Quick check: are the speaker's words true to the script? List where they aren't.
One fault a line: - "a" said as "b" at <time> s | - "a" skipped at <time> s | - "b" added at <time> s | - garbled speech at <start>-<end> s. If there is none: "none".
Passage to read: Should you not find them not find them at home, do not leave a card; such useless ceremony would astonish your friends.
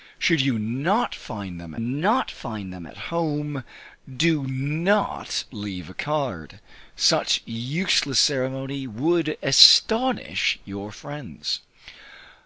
none